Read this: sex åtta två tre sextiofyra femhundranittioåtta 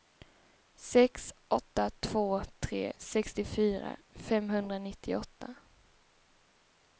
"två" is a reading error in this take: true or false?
false